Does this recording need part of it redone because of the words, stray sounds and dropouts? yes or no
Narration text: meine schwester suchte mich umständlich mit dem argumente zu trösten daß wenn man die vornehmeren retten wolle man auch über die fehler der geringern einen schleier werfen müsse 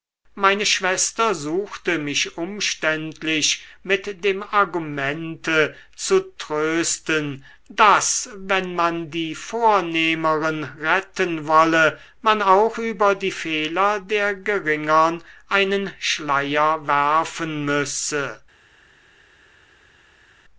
no